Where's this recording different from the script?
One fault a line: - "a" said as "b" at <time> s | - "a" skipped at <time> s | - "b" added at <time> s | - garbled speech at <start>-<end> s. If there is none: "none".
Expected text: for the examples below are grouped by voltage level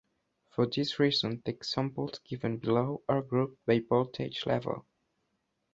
- "this reason" added at 0.7 s
- "given" added at 2.2 s